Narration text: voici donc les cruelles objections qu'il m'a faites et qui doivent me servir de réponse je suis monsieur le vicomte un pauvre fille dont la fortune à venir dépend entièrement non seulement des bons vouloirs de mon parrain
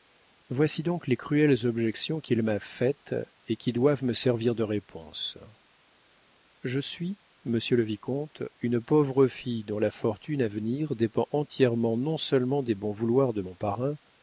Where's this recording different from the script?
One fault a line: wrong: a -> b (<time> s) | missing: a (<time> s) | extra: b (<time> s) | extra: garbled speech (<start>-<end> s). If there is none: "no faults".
wrong: un -> une (8.6 s)